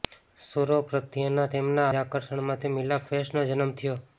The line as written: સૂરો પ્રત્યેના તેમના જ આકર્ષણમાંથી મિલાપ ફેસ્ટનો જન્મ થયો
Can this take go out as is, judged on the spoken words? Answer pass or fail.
pass